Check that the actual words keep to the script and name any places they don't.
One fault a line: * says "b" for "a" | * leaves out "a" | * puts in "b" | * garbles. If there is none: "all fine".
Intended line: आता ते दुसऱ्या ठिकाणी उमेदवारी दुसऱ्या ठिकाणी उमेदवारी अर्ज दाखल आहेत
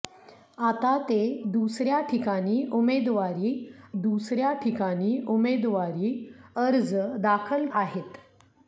all fine